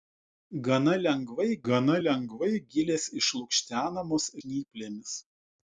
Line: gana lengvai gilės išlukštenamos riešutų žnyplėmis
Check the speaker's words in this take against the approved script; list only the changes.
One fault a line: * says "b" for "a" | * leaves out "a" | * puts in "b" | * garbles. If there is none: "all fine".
* puts in "gana lengvai"
* leaves out "riešutų"